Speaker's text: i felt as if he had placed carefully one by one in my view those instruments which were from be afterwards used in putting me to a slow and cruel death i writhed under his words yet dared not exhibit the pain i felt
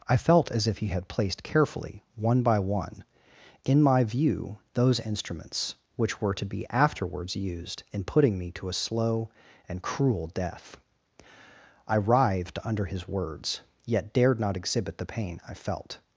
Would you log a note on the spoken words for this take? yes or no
yes